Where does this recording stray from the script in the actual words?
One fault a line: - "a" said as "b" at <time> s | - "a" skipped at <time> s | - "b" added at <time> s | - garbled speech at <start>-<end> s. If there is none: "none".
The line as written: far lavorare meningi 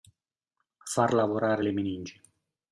- "le" added at 1.6 s